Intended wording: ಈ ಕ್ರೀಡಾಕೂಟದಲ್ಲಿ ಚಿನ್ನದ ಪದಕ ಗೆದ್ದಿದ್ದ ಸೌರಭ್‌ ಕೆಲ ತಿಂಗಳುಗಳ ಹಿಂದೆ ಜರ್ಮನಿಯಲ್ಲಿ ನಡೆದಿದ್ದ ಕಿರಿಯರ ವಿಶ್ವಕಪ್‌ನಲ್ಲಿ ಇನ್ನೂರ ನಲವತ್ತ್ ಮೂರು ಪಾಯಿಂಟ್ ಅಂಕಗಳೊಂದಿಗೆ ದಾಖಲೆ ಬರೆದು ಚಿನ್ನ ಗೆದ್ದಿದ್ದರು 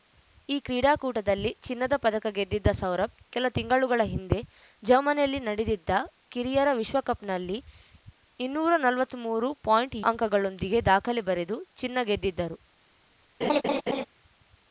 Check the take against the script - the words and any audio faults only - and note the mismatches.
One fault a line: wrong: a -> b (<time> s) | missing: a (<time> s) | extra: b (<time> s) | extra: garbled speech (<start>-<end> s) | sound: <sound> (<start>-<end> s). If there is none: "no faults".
sound: laugh (13.4-14.1 s)